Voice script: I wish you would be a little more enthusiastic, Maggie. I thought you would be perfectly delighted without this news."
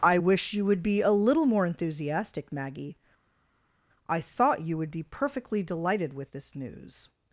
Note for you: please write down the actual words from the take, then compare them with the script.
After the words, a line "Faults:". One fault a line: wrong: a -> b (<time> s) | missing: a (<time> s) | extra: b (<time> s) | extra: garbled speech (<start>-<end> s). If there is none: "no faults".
I wish you would be a little more enthusiastic, Maggie. I thought you would be perfectly delighted with this news."
Faults:
wrong: without -> with (6.1 s)